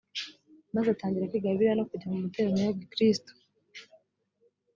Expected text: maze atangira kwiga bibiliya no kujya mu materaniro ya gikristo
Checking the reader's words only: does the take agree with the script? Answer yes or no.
yes